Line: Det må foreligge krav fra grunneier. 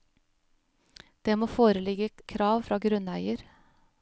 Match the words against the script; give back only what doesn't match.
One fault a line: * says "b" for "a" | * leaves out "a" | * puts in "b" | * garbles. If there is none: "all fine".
all fine